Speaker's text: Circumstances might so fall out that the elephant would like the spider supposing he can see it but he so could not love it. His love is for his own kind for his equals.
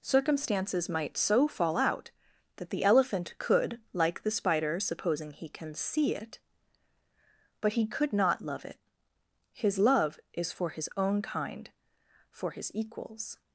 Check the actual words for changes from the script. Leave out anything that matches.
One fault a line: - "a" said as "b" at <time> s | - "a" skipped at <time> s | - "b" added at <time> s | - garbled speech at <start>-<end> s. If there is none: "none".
- "would" said as "could" at 3.4 s
- "so" skipped at 7.9 s